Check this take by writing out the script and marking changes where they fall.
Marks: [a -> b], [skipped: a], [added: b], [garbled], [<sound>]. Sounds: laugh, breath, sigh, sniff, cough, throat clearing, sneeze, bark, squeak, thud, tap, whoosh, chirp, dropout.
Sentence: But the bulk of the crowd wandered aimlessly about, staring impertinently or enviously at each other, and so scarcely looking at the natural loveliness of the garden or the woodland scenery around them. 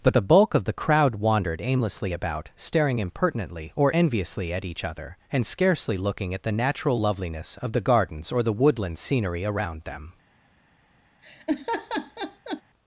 But the bulk of the crowd wandered aimlessly about, staring impertinently or enviously at each other, and [skipped: so] scarcely looking at the natural loveliness of the [garden -> gardens] or the woodland scenery around them. [laugh]